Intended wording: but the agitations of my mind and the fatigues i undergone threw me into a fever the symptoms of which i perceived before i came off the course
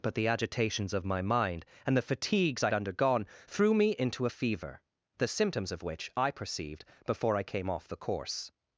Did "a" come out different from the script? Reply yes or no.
no